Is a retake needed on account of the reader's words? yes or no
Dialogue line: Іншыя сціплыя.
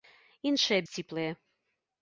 no